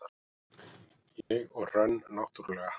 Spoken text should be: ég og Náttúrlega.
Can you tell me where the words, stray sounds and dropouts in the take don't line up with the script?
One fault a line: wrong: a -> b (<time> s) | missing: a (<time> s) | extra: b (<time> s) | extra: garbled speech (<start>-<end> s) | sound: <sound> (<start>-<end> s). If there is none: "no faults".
sound: dropout (1.2-1.3 s)
extra: Hrönn (1.7 s)